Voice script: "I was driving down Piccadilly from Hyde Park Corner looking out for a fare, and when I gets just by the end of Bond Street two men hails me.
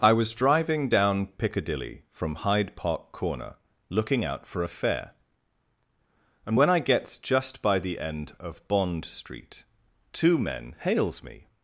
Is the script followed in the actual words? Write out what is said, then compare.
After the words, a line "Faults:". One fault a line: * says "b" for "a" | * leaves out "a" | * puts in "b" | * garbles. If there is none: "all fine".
"I was driving down Piccadilly from Hyde Park Corner looking out for a fare, and when I gets just by the end of Bond Street two men hails me.
Faults:
all fine